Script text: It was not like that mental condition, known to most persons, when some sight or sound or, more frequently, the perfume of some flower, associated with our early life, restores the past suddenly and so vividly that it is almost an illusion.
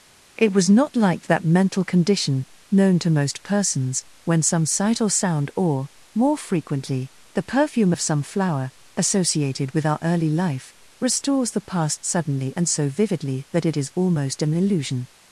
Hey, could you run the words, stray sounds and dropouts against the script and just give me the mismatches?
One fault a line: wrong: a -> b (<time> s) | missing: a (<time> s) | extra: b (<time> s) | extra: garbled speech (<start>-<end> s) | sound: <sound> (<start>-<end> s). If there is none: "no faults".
no faults